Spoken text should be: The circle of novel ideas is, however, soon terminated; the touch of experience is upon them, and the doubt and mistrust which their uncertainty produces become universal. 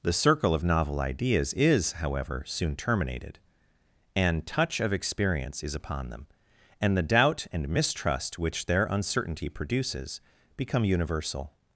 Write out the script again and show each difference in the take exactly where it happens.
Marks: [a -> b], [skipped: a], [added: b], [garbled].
The circle of novel ideas is, however, soon terminated; [the -> an] touch of experience is upon them, and the doubt and mistrust which their uncertainty produces become universal.